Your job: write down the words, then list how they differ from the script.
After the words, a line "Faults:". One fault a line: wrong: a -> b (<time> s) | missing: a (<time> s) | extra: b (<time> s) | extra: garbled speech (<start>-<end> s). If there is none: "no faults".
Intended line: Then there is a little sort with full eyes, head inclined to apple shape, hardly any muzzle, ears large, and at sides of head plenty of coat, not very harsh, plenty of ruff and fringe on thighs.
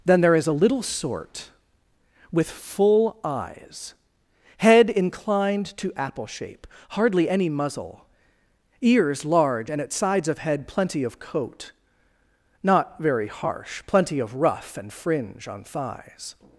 Then there is a little sort with full eyes, head inclined to apple shape, hardly any muzzle, ears large, and at sides of head plenty of coat, not very harsh, plenty of ruff and fringe on thighs.
Faults:
no faults